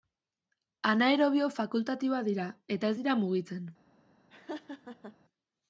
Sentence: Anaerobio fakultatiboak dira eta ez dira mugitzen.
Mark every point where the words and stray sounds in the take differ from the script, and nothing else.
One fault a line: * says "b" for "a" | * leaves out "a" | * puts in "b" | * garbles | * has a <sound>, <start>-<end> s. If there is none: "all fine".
* has a laugh, 4.3-5.2 s